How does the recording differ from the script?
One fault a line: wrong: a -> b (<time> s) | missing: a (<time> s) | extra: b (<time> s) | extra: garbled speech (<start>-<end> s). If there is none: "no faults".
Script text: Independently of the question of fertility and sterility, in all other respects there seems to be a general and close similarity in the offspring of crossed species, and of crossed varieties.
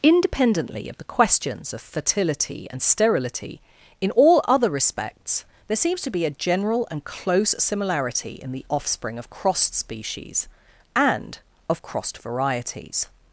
wrong: question -> questions (1.0 s)